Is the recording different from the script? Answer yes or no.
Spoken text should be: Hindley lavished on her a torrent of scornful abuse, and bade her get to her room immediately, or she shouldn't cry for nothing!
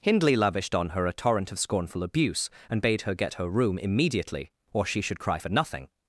yes